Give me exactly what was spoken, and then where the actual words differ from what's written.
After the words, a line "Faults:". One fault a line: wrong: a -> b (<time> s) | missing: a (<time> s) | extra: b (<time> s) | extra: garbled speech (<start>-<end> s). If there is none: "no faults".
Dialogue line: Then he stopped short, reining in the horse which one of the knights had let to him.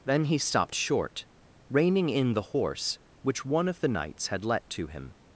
Then he stopped short, reining in the horse which one of the knights had let to him.
Faults:
no faults